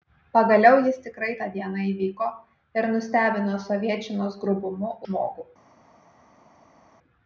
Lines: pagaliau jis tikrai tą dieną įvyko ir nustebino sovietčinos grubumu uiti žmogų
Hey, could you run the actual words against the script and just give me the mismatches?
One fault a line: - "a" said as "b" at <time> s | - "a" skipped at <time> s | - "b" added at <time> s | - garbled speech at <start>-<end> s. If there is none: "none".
- "uiti" skipped at 4.9 s